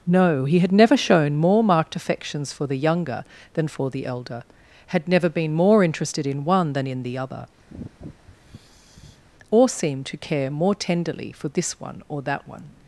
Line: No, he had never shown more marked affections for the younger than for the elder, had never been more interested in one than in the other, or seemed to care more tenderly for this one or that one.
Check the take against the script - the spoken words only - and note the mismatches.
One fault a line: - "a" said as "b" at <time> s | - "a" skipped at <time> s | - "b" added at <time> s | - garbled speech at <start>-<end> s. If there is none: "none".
none